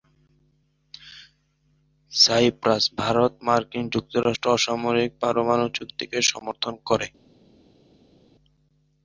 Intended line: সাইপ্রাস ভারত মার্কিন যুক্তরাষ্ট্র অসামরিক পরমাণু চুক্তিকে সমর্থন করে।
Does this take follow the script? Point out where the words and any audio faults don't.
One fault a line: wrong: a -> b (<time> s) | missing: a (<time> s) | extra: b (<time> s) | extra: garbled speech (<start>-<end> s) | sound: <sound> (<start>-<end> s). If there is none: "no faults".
no faults